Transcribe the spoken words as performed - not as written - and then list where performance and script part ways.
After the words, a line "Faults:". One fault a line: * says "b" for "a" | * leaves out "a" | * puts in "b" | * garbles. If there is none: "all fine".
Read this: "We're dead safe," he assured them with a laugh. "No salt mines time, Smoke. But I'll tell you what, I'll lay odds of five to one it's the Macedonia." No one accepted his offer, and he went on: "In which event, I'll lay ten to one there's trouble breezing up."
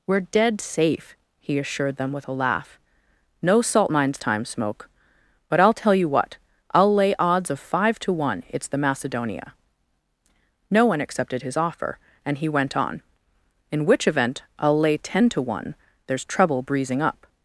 "We're dead safe," he assured them with a laugh. "No salt mines time, Smoke. But I'll tell you what, I'll lay odds of five to one it's the Macedonia." No one accepted his offer, and he went on: "In which event, I'll lay ten to one there's trouble breezing up."
Faults:
all fine